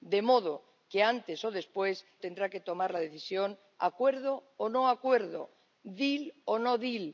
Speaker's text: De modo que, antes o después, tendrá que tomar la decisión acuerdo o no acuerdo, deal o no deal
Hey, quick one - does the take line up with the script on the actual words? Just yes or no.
yes